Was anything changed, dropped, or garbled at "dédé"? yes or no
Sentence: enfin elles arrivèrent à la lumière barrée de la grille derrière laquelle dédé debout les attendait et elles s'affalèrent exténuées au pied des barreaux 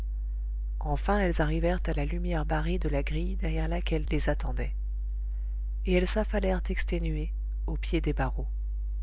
yes